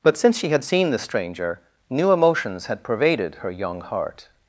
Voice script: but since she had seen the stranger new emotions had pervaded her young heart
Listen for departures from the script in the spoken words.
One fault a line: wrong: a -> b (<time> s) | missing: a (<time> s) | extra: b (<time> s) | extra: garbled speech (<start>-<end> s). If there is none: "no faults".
no faults